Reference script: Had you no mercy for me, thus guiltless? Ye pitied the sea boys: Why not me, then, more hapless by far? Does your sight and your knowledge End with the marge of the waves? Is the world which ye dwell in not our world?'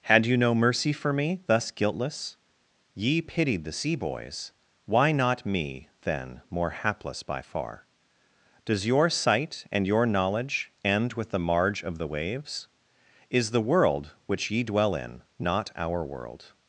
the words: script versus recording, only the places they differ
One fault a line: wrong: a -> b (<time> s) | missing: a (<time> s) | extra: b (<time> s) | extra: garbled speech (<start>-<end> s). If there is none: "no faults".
no faults